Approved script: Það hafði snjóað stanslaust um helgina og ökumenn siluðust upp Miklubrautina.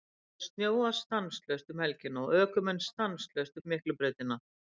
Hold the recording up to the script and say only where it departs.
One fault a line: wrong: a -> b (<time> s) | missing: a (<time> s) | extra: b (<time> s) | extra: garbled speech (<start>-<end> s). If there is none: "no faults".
wrong: siluðust -> stanslaust (2.9 s)